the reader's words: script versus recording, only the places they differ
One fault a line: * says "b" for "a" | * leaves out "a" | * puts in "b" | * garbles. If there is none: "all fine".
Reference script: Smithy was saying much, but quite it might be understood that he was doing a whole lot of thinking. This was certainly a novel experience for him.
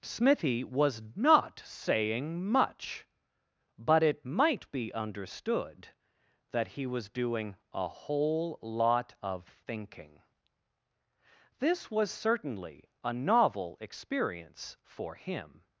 * puts in "not"
* leaves out "quite"